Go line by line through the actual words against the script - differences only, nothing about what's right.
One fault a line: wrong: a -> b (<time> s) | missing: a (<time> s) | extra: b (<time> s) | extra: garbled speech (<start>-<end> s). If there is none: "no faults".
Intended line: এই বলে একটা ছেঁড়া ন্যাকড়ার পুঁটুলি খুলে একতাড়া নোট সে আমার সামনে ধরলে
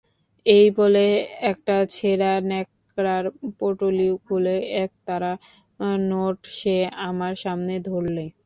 no faults